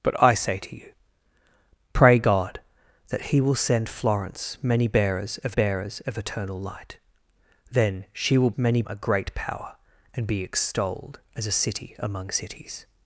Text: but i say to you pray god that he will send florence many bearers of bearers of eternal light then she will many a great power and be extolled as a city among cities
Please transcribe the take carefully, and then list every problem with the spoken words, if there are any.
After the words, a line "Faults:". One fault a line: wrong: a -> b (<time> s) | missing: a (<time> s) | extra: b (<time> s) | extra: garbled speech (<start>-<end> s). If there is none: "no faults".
but i say to you pray god that he will send florence many bearers of bearers of eternal light then she will many a great power and be extolled as a city among cities
Faults:
no faults